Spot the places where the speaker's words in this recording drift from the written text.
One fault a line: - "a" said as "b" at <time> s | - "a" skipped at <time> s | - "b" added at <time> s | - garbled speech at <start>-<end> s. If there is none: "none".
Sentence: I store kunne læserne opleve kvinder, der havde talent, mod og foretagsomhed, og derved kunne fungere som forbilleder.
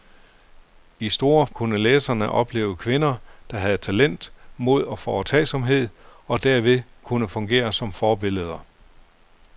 none